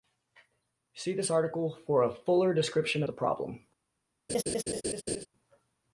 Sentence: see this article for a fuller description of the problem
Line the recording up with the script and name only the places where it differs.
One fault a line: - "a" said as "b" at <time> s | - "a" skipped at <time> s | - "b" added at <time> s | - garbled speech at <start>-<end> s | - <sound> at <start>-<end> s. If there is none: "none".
- "of" skipped at 3.0 s
- laugh at 4.3-5.3 s